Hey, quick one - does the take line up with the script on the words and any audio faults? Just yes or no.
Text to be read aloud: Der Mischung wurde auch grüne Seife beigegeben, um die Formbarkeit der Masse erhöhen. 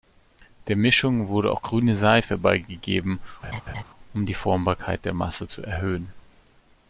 no